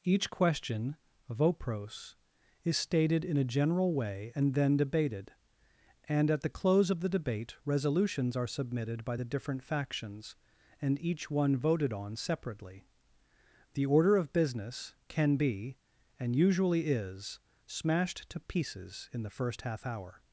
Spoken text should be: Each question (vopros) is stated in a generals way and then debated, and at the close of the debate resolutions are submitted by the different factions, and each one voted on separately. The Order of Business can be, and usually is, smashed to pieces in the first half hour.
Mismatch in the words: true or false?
true